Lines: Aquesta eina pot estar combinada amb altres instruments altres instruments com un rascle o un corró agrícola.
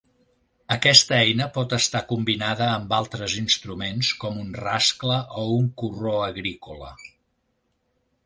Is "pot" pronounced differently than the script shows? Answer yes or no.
no